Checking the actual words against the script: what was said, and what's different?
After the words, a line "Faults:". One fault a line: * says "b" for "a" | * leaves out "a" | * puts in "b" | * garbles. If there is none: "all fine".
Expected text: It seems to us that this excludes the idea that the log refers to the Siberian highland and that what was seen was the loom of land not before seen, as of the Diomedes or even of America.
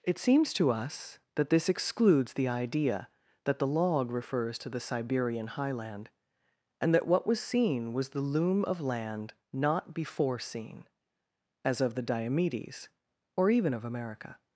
It seems to us that this excludes the idea that the log refers to the Siberian highland and that what was seen was the loom of land not before seen, as of the Diomedes or even of America.
Faults:
all fine